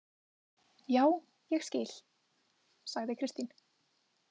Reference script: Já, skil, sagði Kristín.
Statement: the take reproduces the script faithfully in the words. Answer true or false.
false